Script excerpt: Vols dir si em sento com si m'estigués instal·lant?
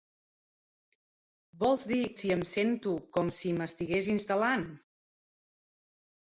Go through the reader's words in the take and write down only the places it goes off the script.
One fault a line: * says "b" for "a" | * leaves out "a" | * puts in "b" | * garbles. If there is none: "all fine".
all fine